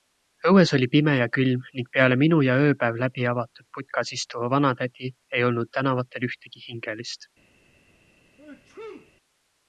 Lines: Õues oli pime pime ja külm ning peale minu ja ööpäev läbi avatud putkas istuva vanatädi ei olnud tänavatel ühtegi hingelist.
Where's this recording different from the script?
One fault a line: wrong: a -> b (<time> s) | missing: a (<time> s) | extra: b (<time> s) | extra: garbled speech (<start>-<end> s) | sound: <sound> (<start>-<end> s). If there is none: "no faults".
missing: pime (1.1 s)
sound: sneeze (8.4-9.1 s)